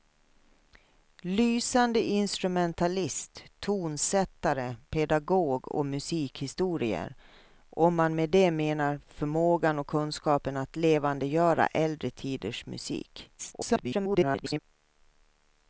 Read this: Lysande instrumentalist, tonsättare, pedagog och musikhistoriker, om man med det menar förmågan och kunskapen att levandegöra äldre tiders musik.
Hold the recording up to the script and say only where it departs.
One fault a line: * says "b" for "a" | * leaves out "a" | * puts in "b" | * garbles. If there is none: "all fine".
* garbles